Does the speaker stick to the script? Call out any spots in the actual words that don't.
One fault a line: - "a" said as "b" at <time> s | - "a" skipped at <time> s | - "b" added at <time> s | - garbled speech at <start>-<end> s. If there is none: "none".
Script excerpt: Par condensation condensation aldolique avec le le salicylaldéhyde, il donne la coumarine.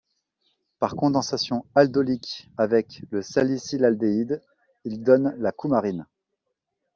- "condensation" skipped at 1.6 s
- "le" skipped at 3.2 s